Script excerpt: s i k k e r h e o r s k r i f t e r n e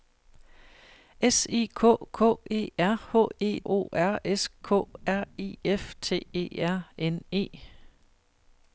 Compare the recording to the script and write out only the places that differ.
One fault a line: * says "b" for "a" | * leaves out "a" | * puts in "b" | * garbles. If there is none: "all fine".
all fine